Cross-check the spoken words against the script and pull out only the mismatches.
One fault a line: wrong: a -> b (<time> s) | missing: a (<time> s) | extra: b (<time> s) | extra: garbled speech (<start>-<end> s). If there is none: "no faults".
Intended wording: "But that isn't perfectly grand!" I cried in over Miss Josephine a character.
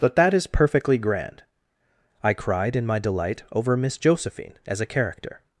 wrong: isn't -> is (0.3 s)
extra: my delight (2.9 s)
extra: as (4.7 s)